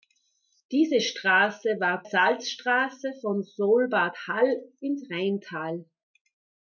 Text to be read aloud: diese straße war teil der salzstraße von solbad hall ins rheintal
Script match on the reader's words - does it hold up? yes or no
no